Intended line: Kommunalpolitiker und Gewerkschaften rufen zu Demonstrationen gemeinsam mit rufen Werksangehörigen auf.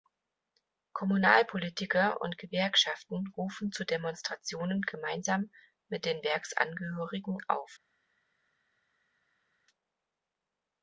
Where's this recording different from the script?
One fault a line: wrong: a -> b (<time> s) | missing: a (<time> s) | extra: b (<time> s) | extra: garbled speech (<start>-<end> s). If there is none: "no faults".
wrong: rufen -> den (6.0 s)